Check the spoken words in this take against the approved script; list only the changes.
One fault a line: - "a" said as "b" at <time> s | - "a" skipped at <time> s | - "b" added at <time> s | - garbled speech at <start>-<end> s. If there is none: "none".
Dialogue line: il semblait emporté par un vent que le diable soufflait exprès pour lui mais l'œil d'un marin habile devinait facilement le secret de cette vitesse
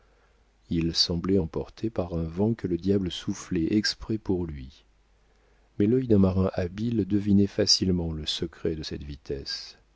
none